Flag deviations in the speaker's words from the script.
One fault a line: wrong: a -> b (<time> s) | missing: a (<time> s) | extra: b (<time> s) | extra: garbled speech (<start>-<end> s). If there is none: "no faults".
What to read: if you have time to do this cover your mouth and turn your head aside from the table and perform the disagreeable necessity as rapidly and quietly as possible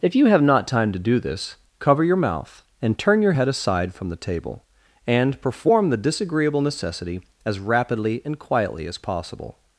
extra: not (0.4 s)